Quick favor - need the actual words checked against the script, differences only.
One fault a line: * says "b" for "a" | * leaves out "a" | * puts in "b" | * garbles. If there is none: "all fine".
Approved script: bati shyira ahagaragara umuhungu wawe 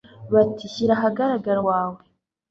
* leaves out "umuhungu"